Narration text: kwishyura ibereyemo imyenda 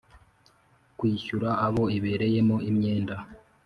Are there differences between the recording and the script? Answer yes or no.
yes